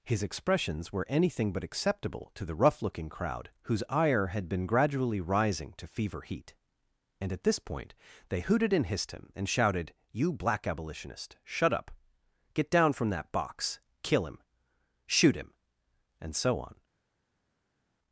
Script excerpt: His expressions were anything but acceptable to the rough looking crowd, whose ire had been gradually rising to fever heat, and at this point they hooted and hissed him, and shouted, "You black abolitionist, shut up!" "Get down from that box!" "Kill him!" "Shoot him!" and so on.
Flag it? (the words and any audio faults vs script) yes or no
no